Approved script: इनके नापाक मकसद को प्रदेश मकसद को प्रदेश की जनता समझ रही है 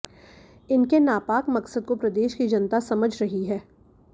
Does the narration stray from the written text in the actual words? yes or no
yes